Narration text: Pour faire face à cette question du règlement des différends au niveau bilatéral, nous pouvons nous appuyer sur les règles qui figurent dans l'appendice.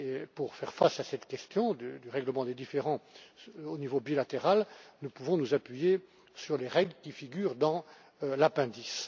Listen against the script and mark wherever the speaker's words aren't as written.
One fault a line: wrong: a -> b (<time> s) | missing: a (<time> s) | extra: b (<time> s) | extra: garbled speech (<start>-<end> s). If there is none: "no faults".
no faults